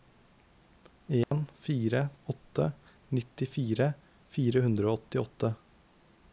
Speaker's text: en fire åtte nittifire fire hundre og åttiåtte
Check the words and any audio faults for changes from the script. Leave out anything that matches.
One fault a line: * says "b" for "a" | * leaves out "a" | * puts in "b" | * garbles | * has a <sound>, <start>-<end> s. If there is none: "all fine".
* has a dropout, 1.2-1.3 s